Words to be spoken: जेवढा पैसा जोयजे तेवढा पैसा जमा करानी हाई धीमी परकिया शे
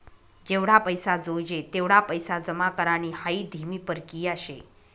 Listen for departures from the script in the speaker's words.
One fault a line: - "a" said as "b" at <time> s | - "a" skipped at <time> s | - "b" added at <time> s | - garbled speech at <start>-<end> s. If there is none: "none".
none